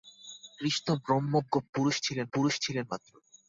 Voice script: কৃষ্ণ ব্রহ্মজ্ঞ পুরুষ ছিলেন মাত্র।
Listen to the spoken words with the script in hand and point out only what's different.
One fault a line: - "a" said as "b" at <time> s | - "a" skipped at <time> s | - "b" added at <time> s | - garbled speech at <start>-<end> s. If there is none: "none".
- "পুরুষ ছিলেন" added at 2.3 s